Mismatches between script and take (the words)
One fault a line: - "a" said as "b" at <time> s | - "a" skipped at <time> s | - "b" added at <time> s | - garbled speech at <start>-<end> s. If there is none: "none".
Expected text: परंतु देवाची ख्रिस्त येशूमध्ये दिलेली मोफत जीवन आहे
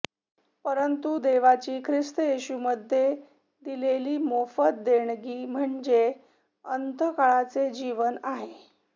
- "देणगी म्हणजे अनंतकाळचे" added at 4.8 s